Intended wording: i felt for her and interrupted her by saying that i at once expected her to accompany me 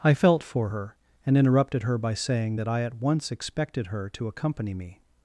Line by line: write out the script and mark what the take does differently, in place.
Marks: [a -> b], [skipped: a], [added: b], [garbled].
i felt for her and interrupted her by saying that i at once expected her to accompany me